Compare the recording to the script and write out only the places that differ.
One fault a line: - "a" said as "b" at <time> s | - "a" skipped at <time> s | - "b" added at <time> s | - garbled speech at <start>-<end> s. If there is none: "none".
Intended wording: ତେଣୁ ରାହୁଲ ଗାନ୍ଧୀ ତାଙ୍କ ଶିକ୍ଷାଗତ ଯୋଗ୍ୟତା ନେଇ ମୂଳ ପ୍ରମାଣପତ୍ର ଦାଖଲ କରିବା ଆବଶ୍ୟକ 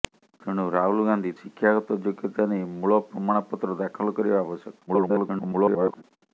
- "ତାଙ୍କ" skipped at 1.3 s
- garbled speech at 4.9-6.0 s